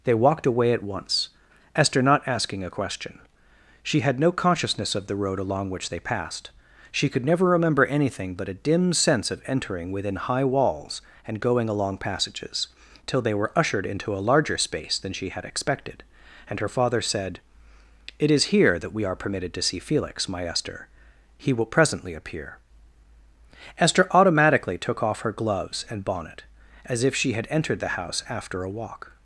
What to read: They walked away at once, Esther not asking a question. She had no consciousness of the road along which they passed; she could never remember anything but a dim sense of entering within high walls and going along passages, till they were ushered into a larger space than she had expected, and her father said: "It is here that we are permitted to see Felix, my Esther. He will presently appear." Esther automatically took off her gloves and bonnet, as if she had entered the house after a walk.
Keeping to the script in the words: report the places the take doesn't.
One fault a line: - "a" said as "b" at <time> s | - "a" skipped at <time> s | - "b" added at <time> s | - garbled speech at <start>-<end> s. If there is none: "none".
none